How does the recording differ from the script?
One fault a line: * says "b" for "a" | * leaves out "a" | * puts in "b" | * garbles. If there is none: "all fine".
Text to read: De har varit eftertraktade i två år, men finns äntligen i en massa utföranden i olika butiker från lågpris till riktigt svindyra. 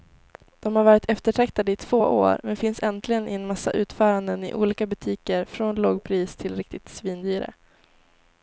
all fine